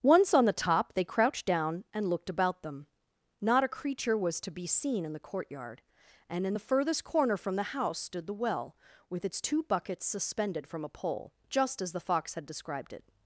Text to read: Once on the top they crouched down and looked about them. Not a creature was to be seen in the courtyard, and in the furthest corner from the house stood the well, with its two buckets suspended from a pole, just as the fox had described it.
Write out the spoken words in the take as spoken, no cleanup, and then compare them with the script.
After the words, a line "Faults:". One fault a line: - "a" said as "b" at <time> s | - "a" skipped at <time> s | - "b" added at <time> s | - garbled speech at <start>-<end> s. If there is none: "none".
Once on the top they crouched down and looked about them. Not a creature was to be seen in the courtyard, and in the furthest corner from the house stood the well, with its two buckets suspended from a pole, just as the fox had described it.
Faults:
none